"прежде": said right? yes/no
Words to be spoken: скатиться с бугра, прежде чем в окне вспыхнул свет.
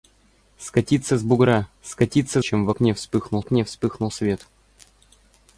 no